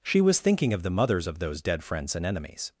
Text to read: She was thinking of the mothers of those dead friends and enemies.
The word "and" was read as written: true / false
true